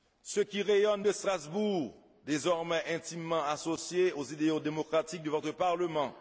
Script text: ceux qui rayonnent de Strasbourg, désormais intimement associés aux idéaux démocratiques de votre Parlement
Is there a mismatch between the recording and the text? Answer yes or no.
no